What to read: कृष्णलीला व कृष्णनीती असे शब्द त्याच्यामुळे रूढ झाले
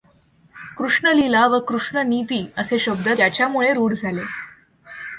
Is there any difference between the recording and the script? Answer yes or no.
no